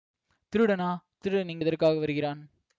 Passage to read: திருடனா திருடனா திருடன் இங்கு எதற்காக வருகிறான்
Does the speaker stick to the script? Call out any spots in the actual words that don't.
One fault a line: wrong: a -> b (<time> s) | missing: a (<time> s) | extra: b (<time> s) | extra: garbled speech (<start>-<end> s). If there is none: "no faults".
missing: திருடனா (0.9 s)